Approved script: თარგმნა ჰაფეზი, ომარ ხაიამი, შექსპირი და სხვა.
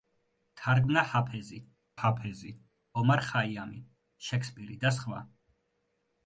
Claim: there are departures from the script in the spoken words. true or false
true